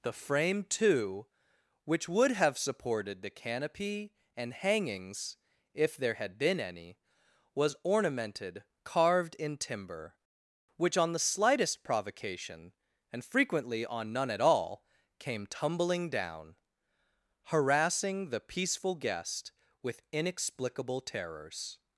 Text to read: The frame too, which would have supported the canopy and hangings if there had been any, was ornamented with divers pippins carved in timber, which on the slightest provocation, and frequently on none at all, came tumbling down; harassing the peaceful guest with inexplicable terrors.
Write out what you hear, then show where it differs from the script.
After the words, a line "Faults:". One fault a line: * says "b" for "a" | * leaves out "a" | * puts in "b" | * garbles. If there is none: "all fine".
The frame too, which would have supported the canopy and hangings if there had been any, was ornamented carved in timber, which on the slightest provocation, and frequently on none at all, came tumbling down; harassing the peaceful guest with inexplicable terrors.
Faults:
* leaves out "with divers pippins"